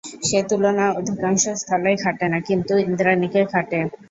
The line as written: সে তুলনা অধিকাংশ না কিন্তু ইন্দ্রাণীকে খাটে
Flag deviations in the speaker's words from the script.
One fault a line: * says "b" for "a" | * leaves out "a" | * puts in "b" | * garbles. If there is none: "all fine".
* puts in "স্থলেই খাটে"